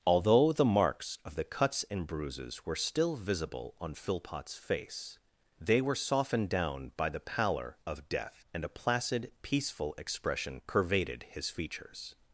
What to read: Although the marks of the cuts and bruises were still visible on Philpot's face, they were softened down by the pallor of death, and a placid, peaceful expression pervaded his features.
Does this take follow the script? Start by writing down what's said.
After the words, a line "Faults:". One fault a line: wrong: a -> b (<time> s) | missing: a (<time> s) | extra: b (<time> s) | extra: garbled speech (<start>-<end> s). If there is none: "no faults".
Although the marks of the cuts and bruises were still visible on Philpot's face, they were softened down by the pallor of death, and a placid, peaceful expression pervaded his features.
Faults:
no faults